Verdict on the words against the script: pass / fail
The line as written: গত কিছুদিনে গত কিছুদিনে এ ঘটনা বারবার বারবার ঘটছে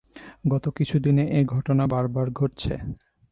fail